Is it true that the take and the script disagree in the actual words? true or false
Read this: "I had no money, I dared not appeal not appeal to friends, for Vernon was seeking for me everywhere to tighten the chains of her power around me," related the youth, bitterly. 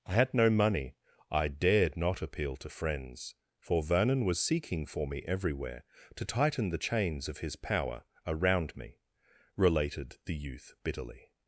true